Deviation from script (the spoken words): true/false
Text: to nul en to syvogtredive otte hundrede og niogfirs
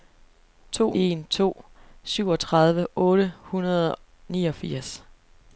true